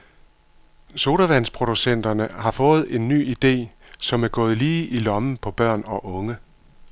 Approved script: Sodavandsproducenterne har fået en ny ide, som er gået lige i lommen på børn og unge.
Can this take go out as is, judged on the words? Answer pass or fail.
pass